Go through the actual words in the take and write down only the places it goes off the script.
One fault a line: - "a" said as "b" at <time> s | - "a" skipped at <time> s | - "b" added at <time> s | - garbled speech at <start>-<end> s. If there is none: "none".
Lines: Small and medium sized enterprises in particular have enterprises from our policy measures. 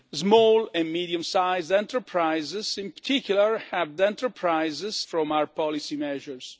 none